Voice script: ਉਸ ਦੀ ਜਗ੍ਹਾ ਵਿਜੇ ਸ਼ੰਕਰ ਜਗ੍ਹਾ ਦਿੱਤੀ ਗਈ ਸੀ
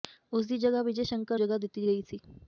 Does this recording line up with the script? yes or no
yes